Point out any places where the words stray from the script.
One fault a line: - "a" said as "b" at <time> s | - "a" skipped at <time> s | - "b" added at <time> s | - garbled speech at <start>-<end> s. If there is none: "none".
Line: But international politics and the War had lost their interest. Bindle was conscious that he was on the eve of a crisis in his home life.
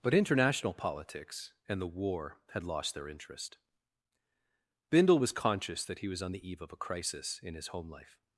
none